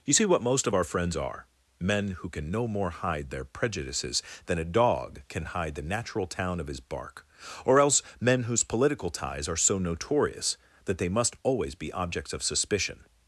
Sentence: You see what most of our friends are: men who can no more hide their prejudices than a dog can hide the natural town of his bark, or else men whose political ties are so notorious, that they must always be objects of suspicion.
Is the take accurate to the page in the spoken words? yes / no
yes